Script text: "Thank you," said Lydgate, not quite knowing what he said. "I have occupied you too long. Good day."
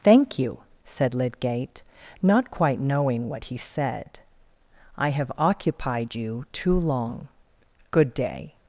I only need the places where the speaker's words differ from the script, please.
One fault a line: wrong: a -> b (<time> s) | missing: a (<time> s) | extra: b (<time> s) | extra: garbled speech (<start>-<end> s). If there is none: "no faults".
no faults